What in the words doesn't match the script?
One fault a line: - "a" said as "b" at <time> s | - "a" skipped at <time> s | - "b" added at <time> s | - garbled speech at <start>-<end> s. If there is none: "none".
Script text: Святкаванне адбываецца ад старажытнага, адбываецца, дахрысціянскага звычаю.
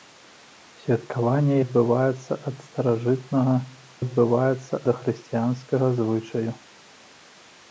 none